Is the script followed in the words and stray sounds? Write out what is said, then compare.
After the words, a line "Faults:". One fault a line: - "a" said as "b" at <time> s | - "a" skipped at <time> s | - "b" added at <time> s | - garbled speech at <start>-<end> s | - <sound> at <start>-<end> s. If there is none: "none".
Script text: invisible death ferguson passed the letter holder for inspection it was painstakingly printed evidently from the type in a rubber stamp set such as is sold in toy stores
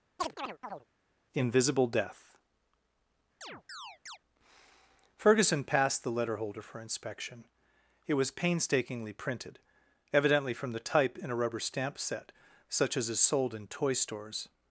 invisible death ferguson passed the letter holder for inspection it was painstakingly printed evidently from the type in a rubber stamp set such as is sold in toy stores
Faults:
- chirp at 0.2-0.8 s
- chirp at 3.4-4.2 s